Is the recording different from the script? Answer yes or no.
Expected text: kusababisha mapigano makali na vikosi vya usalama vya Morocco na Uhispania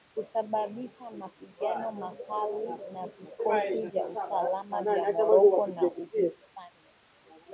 no